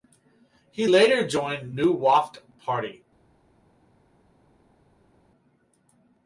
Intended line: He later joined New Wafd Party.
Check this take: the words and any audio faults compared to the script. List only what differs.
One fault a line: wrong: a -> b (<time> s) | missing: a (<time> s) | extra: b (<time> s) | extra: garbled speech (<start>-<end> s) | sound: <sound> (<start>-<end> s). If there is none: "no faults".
no faults